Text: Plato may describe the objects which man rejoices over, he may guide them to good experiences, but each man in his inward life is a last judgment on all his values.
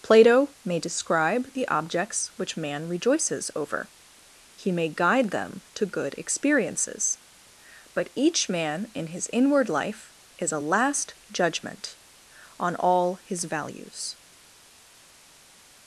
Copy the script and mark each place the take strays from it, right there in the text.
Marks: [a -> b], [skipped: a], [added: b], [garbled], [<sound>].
Plato may describe the objects which man rejoices over, he may guide them to good experiences, but each man in his inward life is a last judgment on all his values.